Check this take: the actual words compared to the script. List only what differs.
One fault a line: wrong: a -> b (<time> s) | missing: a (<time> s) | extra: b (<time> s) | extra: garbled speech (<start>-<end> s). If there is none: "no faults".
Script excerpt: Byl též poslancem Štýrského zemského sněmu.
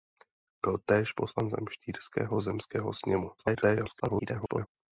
extra: garbled speech (3.4-4.7 s)